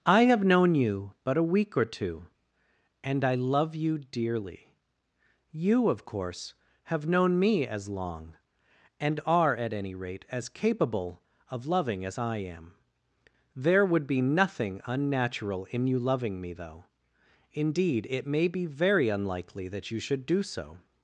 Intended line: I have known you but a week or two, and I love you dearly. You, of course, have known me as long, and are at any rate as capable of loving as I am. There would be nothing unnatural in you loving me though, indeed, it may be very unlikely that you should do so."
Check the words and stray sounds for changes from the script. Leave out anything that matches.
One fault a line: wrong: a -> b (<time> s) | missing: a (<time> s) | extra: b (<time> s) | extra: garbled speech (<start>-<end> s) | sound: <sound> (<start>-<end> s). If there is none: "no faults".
no faults